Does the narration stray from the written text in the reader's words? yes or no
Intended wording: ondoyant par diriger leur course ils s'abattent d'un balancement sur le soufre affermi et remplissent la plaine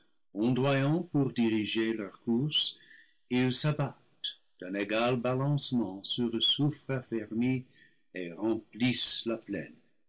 yes